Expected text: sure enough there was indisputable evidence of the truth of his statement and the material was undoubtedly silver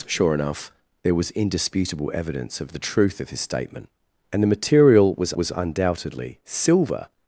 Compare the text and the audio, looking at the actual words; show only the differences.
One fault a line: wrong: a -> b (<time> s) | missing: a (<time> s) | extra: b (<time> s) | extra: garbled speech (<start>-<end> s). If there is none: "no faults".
extra: was (5.3 s)